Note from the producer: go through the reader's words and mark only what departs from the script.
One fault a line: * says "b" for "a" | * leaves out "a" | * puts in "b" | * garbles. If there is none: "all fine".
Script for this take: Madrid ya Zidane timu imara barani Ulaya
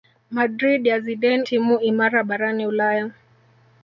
all fine